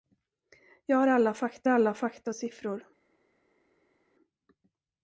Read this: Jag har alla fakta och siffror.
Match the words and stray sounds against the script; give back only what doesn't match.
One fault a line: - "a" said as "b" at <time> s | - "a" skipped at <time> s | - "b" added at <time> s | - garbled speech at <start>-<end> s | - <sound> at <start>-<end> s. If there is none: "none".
- "alla fakta" added at 1.7 s